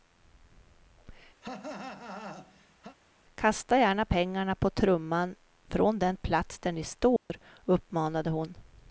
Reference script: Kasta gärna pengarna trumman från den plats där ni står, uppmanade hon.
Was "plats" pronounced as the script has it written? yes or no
yes